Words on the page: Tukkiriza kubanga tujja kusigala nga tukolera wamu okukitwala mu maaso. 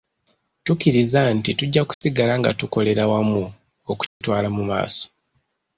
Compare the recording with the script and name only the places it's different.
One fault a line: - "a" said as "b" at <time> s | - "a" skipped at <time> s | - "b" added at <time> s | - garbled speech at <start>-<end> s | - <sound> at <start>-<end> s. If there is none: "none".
- "kubanga" said as "nti" at 1.4 s
- dropout at 1.9-2.0 s
- dropout at 4.1-4.2 s